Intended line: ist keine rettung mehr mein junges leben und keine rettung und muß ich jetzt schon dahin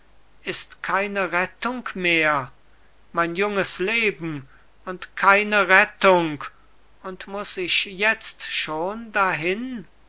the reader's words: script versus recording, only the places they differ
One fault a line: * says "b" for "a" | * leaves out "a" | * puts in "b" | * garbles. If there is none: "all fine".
all fine